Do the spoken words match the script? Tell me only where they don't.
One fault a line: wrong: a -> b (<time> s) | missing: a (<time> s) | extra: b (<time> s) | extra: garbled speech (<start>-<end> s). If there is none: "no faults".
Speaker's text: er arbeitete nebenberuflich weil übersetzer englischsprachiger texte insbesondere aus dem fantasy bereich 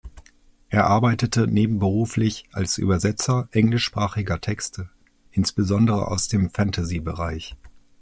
wrong: weil -> als (2.5 s)